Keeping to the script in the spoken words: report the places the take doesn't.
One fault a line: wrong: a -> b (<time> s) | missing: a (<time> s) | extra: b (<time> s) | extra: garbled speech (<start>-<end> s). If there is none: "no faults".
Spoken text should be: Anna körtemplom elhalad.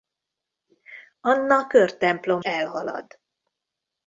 no faults